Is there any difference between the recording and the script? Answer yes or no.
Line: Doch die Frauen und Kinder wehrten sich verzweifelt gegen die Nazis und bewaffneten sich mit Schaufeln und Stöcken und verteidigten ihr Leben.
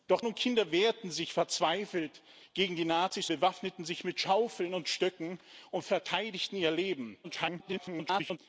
yes